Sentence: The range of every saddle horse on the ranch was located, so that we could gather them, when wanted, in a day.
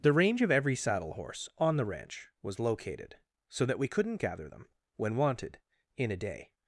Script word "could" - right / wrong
wrong